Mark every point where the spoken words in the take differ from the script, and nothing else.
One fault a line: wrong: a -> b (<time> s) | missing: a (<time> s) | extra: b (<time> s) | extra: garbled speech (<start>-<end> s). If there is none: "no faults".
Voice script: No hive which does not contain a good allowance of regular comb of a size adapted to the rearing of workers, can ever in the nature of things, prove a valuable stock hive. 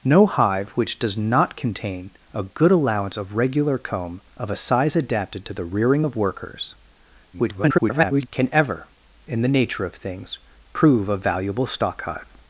extra: garbled speech (7.3-8.3 s)